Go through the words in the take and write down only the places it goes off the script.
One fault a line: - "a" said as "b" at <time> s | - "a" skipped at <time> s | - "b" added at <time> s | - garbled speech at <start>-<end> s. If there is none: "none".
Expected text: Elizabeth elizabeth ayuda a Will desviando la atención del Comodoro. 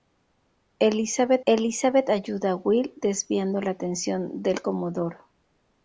none